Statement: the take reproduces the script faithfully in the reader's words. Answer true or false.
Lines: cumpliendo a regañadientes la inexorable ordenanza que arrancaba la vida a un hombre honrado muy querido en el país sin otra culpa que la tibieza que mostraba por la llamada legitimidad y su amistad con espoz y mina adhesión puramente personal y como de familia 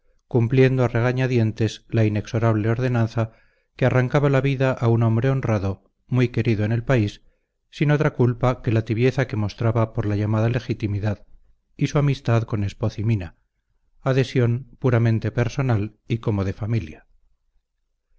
true